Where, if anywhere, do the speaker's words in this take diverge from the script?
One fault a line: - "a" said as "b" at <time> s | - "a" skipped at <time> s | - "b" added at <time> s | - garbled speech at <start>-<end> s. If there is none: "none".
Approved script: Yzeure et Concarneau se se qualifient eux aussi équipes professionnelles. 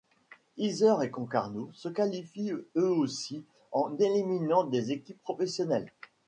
- "se" skipped at 1.9 s
- "en éliminant des" added at 3.7 s